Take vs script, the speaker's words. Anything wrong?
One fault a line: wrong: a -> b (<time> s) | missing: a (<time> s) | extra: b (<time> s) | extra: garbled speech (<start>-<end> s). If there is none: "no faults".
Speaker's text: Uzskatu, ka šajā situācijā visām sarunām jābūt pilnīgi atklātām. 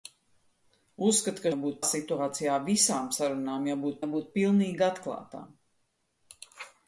wrong: šajā -> jābūt (1.5 s)
extra: jābūt (4.0 s)